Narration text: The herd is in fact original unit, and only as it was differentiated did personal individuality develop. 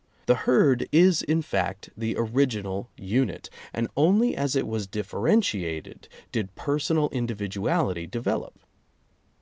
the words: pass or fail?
fail